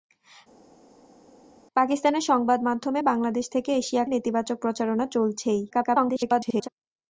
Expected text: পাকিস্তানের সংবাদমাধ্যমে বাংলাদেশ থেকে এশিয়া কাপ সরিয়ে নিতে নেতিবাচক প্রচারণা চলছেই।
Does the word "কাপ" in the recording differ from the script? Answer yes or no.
yes